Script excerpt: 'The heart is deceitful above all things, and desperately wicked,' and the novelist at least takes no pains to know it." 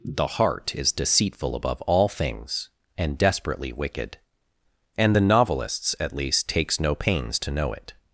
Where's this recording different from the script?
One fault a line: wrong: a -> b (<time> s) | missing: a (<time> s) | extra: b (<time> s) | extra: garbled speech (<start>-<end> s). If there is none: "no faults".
wrong: novelist -> novelists (5.2 s)